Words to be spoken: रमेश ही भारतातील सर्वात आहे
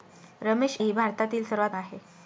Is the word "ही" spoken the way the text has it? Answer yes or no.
yes